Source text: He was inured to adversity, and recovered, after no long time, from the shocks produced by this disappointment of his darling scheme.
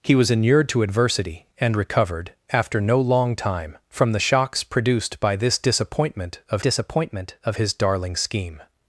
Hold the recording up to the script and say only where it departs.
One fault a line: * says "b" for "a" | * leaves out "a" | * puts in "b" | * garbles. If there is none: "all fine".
* puts in "disappointment of"